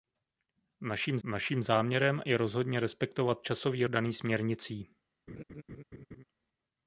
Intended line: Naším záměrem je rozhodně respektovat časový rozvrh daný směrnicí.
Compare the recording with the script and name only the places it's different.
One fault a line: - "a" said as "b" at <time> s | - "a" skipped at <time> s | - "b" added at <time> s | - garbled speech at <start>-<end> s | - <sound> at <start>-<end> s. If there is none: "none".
- "naším" added at 1.2 s
- "rozvrh" skipped at 3.9 s
- laugh at 5.3-6.2 s